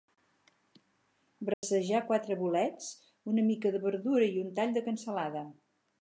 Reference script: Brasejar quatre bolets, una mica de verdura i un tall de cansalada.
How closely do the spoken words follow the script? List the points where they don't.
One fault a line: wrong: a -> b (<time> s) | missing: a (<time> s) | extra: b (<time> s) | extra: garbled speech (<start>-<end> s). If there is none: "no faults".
no faults